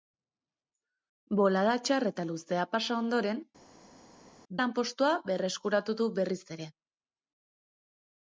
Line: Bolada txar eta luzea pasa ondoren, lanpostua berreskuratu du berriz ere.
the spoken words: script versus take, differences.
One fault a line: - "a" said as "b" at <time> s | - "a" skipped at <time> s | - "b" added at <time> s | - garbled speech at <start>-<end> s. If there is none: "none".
none